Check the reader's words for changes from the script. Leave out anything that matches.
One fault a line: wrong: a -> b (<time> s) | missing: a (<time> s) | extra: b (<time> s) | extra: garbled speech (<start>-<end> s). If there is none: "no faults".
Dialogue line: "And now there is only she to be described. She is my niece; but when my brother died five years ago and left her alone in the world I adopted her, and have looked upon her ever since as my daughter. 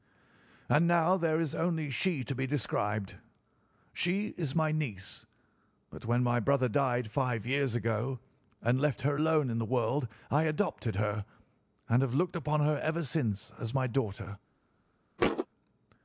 no faults